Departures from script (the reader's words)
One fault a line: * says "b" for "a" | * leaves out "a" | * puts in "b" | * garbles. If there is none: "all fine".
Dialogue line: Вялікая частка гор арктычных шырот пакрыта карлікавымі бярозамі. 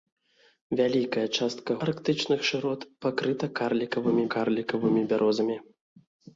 * leaves out "гор"
* puts in "карлікавымі"